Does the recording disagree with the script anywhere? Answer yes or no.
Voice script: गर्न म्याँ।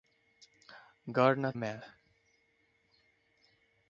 no